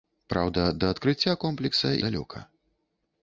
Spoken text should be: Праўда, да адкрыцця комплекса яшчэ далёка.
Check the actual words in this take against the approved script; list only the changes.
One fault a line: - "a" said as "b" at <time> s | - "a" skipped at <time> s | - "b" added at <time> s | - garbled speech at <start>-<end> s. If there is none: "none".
- "яшчэ" skipped at 1.9 s